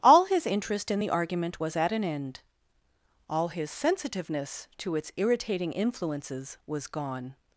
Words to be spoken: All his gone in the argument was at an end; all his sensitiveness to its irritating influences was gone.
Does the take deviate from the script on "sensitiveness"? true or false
false